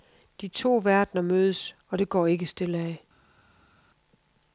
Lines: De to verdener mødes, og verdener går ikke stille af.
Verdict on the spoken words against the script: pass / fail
fail